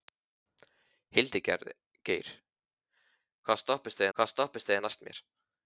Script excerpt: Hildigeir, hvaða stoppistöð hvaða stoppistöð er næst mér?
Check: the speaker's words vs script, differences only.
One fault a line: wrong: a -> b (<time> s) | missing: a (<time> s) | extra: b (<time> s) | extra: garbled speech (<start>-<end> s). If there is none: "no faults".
no faults